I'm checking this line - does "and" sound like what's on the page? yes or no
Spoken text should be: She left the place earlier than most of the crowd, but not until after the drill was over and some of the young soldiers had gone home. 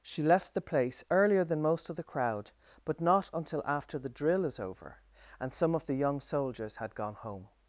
yes